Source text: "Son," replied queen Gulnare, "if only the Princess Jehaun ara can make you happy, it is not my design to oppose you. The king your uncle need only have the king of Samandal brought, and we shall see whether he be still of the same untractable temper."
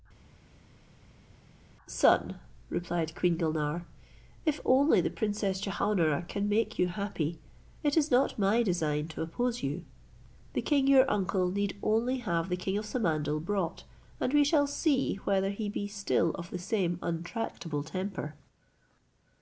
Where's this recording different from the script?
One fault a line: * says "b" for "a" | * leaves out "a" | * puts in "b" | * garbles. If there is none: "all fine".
all fine